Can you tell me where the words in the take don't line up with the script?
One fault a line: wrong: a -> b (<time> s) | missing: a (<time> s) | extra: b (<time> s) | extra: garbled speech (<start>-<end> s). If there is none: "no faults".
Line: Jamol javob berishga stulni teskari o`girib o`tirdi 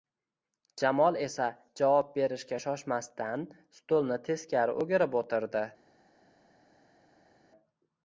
extra: esa (1.2 s)
extra: shoshmasdan (2.6 s)